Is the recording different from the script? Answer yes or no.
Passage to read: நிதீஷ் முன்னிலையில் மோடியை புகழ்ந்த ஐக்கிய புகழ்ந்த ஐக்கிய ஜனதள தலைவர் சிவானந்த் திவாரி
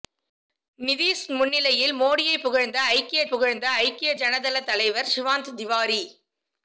no